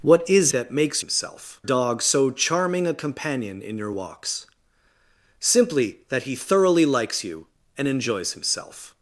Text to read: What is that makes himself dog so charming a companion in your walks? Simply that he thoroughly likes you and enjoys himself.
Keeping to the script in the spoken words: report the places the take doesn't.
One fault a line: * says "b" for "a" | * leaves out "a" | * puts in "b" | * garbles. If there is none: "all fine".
all fine